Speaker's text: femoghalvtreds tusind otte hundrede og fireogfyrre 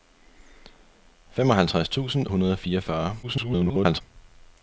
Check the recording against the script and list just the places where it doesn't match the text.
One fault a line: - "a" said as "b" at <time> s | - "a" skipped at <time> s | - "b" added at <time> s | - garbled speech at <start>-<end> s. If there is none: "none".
- "otte" skipped at 2.3 s
- garbled speech at 3.2-4.0 s